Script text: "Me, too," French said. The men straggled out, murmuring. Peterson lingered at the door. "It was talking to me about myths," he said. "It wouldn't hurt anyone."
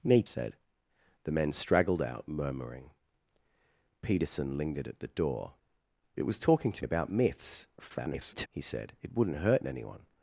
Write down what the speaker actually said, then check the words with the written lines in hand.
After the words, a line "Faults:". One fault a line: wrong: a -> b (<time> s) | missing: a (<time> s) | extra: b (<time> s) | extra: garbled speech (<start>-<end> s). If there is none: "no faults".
"Me, said. The men straggled out, murmuring. Peterson lingered at the door. "It was talking to about myths," [garbled] he said. "It wouldn't hurt anyone."
Faults:
missing: too French (0.2 s)
missing: me (6.8 s)
extra: garbled speech (7.8-8.5 s)